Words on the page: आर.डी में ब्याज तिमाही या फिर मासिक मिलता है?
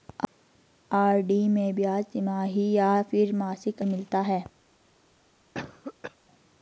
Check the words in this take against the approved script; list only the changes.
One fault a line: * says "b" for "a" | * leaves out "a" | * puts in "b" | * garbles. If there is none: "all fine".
all fine